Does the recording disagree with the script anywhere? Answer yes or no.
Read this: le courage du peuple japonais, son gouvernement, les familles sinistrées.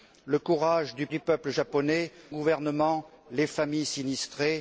yes